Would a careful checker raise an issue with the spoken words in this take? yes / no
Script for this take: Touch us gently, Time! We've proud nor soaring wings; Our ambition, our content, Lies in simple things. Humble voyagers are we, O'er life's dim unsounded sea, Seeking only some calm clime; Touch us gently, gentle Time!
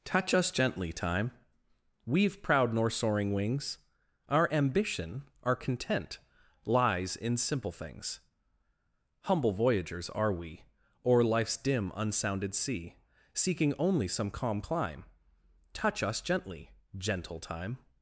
no